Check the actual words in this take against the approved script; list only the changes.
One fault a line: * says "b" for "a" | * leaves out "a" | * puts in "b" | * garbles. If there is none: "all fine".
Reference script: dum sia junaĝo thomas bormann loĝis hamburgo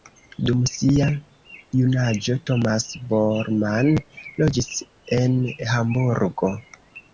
* puts in "en"